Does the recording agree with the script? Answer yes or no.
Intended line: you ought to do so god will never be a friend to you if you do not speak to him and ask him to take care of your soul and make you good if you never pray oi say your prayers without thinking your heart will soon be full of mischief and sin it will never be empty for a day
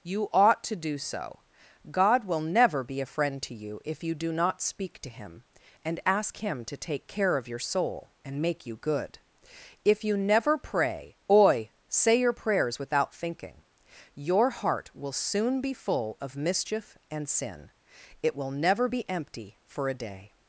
yes